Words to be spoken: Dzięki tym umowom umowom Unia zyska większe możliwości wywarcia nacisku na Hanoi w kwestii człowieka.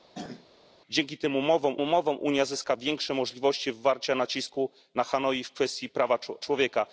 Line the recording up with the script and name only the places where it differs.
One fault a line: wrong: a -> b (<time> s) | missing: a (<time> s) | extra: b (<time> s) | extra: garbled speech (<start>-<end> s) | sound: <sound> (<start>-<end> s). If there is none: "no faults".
sound: throat clearing (0.1-0.5 s)